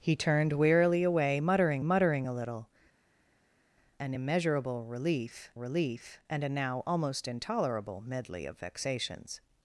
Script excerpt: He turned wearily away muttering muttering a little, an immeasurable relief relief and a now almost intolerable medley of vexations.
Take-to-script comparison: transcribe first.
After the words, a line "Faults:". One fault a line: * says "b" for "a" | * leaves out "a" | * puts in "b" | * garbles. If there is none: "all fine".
He turned wearily away muttering muttering a little, an immeasurable relief relief and a now almost intolerable medley of vexations.
Faults:
all fine